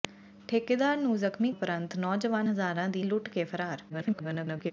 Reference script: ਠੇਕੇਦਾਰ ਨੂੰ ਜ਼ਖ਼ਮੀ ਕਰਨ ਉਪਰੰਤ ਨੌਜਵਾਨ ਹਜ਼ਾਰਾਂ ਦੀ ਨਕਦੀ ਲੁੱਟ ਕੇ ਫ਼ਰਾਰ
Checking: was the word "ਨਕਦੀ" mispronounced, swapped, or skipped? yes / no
yes